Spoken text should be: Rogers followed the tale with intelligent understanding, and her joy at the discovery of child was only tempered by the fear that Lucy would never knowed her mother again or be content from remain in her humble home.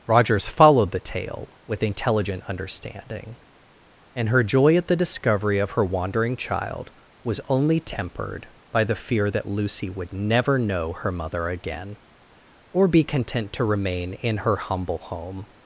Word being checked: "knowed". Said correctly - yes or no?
no